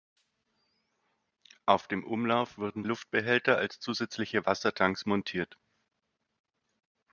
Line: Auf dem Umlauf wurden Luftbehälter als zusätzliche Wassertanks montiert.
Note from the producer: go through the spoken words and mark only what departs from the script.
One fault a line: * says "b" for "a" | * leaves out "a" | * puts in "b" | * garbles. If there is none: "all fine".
all fine